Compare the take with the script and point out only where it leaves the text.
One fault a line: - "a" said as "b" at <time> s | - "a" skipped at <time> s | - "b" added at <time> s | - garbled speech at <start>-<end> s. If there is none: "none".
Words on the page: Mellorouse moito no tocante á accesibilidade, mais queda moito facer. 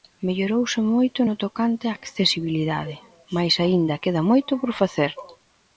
- "aínda" added at 3.6 s
- "por" added at 4.6 s